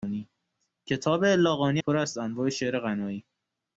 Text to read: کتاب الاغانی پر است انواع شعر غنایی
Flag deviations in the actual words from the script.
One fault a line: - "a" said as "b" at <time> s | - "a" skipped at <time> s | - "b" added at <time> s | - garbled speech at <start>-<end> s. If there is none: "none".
none